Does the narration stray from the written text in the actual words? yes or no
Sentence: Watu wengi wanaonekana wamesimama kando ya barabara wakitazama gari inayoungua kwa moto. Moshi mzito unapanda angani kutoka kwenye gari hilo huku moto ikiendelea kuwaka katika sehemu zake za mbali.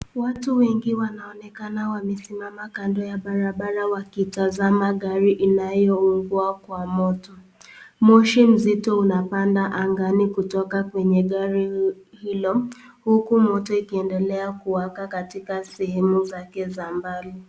no